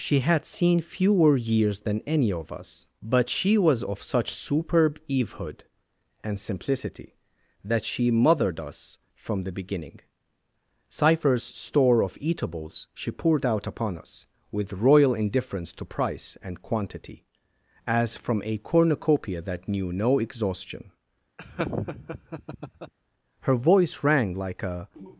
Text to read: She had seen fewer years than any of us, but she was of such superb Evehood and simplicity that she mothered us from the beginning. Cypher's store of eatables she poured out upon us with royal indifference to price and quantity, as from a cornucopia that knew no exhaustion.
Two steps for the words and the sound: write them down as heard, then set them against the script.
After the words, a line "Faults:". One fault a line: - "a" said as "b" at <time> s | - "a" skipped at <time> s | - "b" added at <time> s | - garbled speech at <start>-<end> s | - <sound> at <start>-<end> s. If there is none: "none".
She had seen fewer years than any of us, but she was of such superb Evehood and simplicity that she mothered us from the beginning. Cypher's store of eatables she poured out upon us with royal indifference to price and quantity, as from a cornucopia that knew no exhaustion. Her voice rang like a
Faults:
- laugh at 21.4-22.9 s
- "Her voice rang like a" added at 23.4 s